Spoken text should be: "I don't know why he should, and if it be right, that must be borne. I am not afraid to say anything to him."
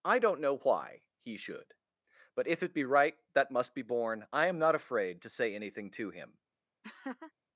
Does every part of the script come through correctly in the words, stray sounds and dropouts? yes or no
no